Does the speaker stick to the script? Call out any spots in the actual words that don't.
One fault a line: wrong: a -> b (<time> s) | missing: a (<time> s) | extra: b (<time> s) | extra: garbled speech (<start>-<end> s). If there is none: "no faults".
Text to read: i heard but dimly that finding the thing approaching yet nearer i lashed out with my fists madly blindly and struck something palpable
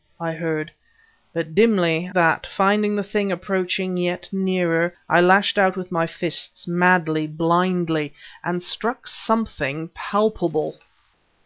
no faults